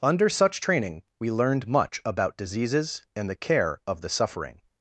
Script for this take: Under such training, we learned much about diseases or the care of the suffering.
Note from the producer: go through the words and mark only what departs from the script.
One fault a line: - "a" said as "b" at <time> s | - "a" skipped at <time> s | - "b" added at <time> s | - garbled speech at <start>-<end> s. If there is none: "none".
- "or" said as "and" at 3.1 s